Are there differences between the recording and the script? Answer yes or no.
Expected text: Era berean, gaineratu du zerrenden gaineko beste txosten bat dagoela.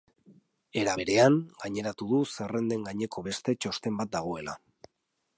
no